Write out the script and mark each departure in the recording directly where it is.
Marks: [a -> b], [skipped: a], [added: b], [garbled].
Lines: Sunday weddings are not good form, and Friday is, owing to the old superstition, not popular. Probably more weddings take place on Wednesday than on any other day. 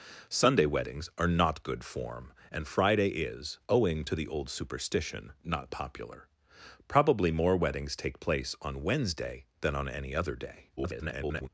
Sunday weddings are not good form, and Friday is, owing to the old superstition, not popular. Probably more weddings take place on Wednesday than on any other day. [garbled]